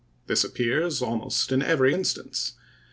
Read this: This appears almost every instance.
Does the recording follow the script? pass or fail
fail